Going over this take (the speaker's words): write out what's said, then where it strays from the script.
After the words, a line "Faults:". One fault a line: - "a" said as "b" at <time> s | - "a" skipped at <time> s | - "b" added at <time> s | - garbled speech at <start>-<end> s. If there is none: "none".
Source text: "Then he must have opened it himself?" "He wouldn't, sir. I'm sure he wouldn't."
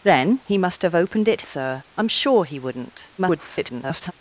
"Then he must have opened it sir. I'm sure he wouldn't." [garbled]
Faults:
- "himself He wouldn't" skipped at 1.4 s
- garbled speech at 3.2-4.1 s